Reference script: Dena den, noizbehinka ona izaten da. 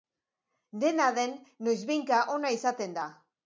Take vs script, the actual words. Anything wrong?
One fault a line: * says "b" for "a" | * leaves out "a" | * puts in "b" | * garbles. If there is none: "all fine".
all fine